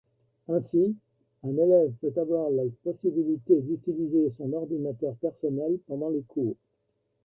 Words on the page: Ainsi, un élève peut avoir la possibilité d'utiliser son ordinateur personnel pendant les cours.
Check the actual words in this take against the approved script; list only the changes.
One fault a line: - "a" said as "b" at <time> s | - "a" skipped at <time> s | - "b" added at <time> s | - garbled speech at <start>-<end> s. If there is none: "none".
none